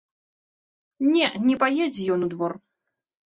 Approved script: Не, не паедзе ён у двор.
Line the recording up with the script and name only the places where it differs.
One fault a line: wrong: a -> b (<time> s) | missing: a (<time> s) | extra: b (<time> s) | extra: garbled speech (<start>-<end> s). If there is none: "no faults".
no faults